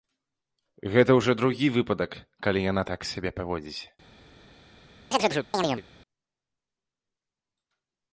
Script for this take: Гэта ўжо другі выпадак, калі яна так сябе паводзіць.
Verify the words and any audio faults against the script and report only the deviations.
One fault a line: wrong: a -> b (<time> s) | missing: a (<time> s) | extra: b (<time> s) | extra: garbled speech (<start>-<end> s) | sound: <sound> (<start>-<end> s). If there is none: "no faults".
sound: chirp (5.1-5.8 s)